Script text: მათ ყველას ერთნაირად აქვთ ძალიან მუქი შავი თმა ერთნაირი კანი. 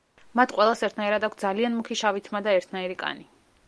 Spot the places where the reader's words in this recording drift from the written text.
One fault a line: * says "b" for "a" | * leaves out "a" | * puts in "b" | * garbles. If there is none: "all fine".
* puts in "და"